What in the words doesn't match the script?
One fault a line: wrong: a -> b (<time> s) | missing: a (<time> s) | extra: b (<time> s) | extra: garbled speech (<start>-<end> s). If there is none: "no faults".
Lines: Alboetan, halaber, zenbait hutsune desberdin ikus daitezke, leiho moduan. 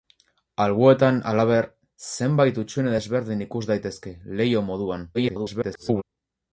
extra: garbled speech (5.1-6.0 s)